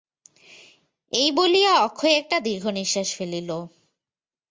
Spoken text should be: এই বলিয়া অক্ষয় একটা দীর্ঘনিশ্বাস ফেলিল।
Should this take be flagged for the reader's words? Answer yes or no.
no